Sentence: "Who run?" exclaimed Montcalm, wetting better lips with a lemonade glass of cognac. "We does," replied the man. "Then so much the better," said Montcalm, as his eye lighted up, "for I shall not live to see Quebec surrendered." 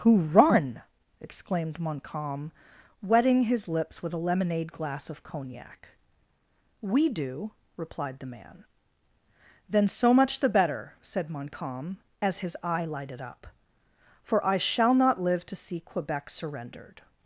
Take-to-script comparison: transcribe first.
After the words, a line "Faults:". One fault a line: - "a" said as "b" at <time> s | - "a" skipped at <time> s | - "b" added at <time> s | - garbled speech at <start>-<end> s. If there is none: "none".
"Who run?" exclaimed Montcalm, wetting his lips with a lemonade glass of cognac. "We do," replied the man. "Then so much the better," said Montcalm, as his eye lighted up, "for I shall not live to see Quebec surrendered."
Faults:
- "better" said as "his" at 3.4 s
- "does" said as "do" at 7.1 s